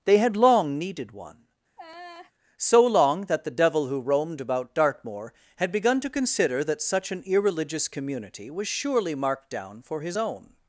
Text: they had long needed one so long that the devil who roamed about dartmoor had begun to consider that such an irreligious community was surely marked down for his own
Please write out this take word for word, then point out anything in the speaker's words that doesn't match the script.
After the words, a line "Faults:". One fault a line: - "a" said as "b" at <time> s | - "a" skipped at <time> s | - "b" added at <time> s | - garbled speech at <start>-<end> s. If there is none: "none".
they had long needed one so long that the devil who roamed about dartmoor had begun to consider that such an irreligious community was surely marked down for his own
Faults:
none